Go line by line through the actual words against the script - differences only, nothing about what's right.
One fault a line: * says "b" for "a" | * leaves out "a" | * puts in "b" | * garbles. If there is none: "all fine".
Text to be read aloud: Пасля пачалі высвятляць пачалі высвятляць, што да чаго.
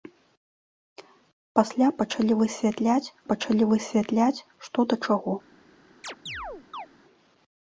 all fine